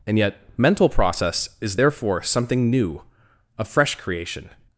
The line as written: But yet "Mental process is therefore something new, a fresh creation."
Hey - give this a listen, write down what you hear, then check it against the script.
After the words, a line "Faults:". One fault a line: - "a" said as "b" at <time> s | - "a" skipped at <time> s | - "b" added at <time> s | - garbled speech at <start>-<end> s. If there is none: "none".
And yet "Mental process is therefore something new, a fresh creation."
Faults:
- "But" said as "And" at 0.1 s